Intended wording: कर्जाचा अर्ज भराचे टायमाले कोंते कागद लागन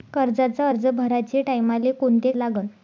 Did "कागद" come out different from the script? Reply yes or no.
yes